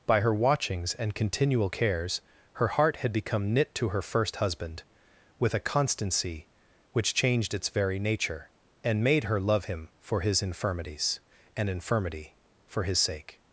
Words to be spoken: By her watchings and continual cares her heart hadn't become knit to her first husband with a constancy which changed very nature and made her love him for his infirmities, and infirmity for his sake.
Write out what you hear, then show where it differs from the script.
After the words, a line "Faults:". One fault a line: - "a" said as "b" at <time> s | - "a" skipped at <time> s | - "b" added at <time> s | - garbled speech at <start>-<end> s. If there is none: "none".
By her watchings and continual cares her heart had become knit to her first husband with a constancy which changed its very nature and made her love him for his infirmities, and infirmity for his sake.
Faults:
- "hadn't" said as "had" at 3.0 s
- "its" added at 7.5 s